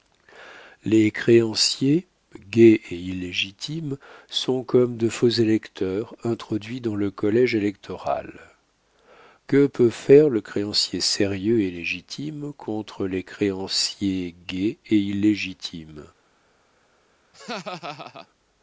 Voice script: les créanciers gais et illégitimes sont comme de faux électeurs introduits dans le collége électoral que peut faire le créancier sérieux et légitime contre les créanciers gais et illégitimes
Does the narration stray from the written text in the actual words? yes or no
no